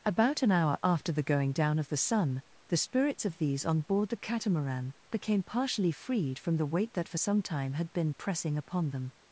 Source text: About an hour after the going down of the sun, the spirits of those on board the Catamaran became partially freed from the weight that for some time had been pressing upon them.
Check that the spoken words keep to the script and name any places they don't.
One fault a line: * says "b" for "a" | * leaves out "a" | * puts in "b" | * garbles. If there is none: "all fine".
* says "these" for "those"